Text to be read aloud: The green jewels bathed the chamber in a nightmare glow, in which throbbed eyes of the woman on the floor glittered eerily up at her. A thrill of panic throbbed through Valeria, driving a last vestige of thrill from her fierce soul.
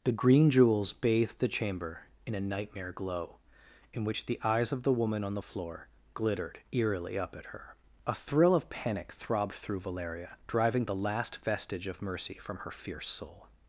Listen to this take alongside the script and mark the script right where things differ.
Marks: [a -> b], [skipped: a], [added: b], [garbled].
The green jewels bathed the chamber in a nightmare glow, in which [throbbed -> the] eyes of the woman on the floor glittered eerily up at her. A thrill of panic throbbed through Valeria, driving [a -> the] last vestige of [thrill -> mercy] from her fierce soul.